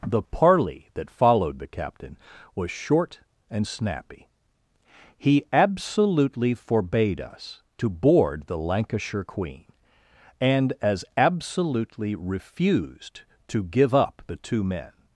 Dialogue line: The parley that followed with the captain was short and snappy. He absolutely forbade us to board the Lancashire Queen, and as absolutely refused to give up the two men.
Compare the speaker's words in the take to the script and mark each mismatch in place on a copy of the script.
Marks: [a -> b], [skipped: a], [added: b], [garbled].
The parley that followed [skipped: with] the captain was short and snappy. He absolutely forbade us to board the Lancashire Queen, and as absolutely refused to give up the two men.